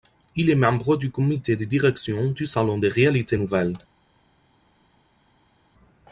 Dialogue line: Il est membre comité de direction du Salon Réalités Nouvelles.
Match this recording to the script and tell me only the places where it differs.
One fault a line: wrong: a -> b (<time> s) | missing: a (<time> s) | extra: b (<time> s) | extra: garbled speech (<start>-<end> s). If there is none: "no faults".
extra: du (1.0 s)
extra: des (2.8 s)